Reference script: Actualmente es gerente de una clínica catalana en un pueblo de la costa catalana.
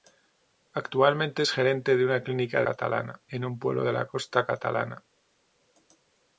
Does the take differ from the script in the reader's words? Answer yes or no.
no